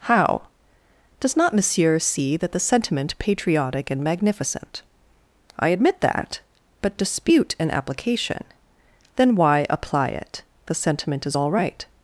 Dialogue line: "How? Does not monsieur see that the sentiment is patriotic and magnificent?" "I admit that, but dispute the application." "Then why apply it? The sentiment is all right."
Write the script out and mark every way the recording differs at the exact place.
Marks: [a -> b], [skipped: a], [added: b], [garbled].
"How? Does not monsieur see that the sentiment [skipped: is] patriotic and magnificent?" "I admit that, but dispute [the -> an] application." "Then why apply it? The sentiment is all right."